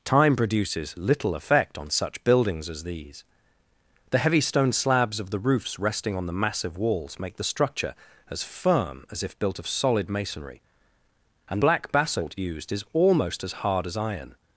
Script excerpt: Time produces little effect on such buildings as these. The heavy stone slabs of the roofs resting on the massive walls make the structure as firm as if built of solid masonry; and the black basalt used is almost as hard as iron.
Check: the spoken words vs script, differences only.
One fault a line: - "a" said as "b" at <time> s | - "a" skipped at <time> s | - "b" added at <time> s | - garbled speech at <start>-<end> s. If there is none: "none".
- "the" skipped at 11.6 s